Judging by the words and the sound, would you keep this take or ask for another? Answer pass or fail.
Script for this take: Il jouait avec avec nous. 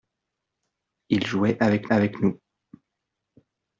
pass